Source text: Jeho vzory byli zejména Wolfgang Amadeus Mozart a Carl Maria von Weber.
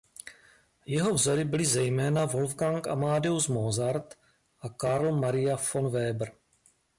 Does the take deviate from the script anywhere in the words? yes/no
no